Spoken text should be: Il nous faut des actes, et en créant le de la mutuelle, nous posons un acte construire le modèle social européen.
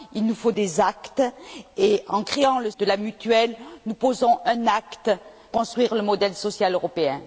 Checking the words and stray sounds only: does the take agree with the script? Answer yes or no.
yes